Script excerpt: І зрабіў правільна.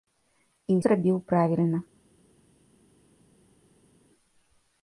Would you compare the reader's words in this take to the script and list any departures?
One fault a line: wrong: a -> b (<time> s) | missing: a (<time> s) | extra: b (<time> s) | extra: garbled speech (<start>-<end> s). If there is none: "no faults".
no faults